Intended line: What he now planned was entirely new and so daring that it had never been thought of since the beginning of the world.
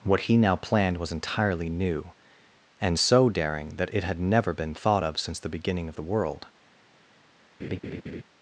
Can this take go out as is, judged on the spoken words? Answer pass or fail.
pass